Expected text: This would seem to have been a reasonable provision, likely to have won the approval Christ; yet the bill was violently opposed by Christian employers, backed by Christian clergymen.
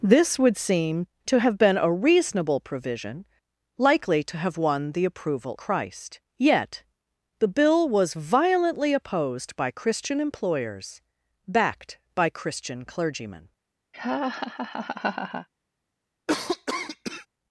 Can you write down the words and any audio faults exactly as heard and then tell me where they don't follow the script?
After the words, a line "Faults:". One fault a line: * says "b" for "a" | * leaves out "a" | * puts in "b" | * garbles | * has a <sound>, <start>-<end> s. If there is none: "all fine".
This would seem to have been a reasonable provision, likely to have won the approval Christ; yet the bill was violently opposed by Christian employers, backed by Christian clergymen.
Faults:
* has a laugh, 13.9-15.5 s
* has a cough, 16.3-17.3 s